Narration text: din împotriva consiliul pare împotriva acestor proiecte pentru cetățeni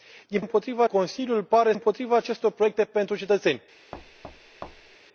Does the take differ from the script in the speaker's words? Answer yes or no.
no